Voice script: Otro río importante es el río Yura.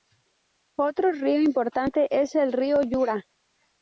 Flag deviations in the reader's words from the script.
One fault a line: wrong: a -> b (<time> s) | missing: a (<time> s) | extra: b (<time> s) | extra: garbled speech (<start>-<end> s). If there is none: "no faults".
no faults